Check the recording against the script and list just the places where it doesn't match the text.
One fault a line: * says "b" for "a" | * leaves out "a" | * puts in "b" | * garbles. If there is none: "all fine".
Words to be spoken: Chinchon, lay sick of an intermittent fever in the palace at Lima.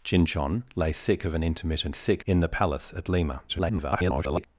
* says "sick" for "fever"
* garbles